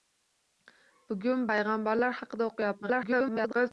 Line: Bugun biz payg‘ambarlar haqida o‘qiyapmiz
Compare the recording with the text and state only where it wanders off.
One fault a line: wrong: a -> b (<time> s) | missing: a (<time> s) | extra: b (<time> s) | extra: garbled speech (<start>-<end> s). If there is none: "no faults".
missing: biz (1.4 s)
extra: garbled speech (2.8-3.7 s)